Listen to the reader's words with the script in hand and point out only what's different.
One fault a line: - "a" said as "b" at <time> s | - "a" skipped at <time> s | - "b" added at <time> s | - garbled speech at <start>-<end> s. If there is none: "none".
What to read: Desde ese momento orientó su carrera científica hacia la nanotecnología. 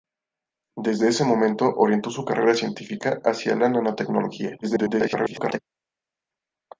- garbled speech at 4.6-5.6 s